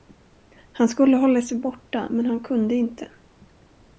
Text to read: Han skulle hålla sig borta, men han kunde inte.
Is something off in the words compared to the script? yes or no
no